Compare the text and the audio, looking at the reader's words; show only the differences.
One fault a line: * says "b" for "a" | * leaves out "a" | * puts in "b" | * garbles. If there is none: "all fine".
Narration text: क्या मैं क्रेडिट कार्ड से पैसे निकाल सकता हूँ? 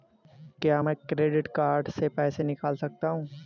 all fine